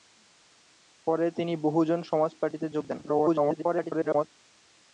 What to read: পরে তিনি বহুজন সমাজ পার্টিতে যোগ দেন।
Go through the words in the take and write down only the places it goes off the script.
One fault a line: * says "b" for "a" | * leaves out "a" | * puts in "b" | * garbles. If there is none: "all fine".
* garbles